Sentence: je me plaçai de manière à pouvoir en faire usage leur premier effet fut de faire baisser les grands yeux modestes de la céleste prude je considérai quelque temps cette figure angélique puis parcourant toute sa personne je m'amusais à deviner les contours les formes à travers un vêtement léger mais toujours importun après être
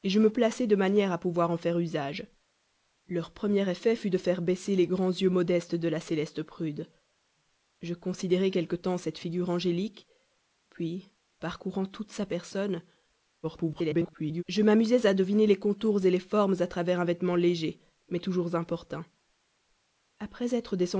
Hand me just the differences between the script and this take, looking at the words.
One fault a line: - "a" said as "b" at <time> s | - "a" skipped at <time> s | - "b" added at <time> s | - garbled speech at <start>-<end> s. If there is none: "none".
- garbled speech at 13.4-14.4 s